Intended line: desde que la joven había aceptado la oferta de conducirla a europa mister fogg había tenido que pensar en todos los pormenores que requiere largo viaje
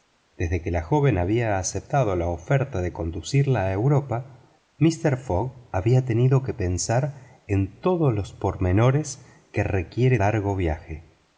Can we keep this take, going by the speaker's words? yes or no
yes